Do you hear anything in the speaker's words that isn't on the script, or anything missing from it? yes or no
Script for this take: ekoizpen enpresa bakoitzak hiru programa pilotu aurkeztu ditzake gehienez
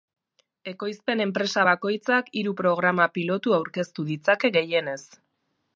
no